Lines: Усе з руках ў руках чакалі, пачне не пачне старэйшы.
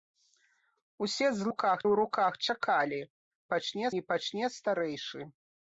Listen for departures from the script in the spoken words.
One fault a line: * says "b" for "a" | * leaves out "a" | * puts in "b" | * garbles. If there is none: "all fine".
all fine